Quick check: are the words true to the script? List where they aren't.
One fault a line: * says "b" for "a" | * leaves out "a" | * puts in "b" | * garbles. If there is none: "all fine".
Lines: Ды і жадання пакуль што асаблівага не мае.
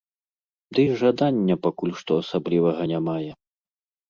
all fine